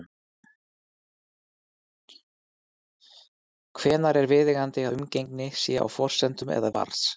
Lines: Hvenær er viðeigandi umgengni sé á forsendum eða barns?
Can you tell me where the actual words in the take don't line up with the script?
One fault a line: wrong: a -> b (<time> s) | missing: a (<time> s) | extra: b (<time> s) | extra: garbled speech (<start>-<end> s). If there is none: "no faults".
no faults